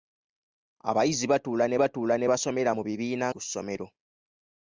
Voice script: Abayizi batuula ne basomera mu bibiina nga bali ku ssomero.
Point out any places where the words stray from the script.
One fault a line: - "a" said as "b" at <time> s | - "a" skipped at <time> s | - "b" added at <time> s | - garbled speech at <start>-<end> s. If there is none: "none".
- "batuula ne" added at 1.8 s
- "nga bali" skipped at 3.3 s